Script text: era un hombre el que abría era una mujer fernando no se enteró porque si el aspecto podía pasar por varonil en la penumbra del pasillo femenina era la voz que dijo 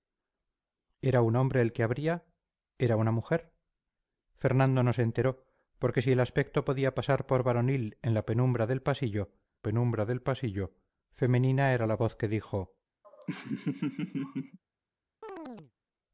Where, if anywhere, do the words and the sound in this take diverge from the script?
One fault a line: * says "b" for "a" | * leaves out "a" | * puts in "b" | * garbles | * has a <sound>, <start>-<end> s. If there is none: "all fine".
* puts in "penumbra del pasillo"
* has a laugh, 13.0-14.6 s
* has a chirp, 15.2-15.7 s